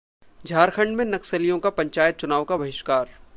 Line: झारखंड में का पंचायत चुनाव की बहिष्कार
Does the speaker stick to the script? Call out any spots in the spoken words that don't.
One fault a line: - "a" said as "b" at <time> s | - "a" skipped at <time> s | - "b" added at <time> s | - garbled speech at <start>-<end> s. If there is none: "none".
- "नक्सलियों" added at 1.1 s
- "की" said as "का" at 2.4 s